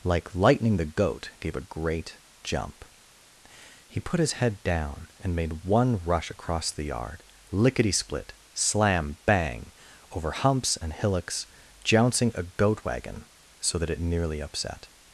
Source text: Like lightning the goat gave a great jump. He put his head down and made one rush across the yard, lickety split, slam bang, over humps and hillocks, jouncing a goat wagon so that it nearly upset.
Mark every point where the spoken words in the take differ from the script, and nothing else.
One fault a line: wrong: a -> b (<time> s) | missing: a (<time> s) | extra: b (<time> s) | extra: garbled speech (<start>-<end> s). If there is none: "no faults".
no faults